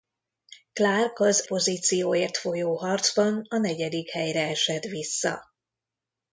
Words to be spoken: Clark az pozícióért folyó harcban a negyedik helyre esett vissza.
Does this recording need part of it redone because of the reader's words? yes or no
no